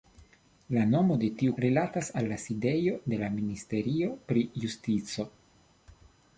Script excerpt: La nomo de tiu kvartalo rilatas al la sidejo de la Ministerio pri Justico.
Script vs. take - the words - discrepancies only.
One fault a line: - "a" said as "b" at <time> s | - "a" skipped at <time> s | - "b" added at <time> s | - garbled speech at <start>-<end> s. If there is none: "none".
- "kvartalo" skipped at 1.5 s